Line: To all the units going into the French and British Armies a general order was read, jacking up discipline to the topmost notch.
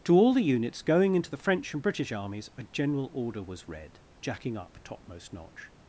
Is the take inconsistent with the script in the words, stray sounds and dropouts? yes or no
yes